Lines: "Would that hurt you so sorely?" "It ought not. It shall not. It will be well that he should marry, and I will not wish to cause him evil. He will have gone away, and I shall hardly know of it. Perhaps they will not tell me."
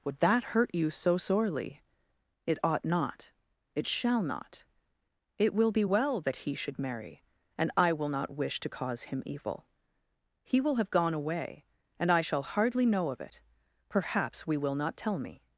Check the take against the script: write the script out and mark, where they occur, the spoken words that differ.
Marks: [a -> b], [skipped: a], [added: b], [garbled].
"Would that hurt you so sorely?" "It ought not. It shall not. It will be well that he should marry, and I will not wish to cause him evil. He will have gone away, and I shall hardly know of it. Perhaps [they -> we] will not tell me."